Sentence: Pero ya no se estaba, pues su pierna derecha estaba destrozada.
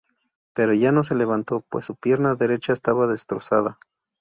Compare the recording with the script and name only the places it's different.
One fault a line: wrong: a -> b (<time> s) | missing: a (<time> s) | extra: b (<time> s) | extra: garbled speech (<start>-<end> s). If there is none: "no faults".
wrong: estaba -> levantó (1.1 s)